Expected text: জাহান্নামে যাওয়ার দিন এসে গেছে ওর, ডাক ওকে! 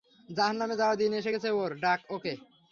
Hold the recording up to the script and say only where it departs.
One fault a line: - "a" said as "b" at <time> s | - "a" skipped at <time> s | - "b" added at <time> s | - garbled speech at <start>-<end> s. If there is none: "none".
none